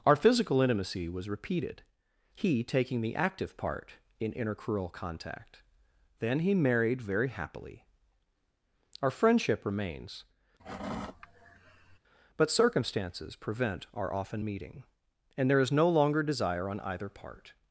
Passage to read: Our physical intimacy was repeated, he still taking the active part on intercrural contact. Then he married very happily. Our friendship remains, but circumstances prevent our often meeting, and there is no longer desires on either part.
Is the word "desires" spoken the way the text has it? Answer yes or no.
no